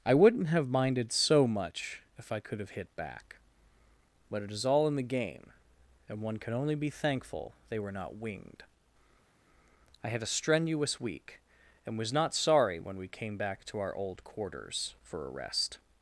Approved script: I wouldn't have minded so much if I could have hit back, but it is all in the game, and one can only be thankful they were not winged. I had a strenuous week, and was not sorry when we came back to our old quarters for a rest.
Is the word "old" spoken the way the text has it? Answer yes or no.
yes